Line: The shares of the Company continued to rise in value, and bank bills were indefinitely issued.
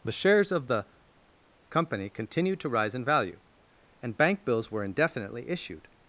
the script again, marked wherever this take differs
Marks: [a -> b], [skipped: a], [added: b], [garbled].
The shares of the Company continued to rise in value, and bank bills were indefinitely issued.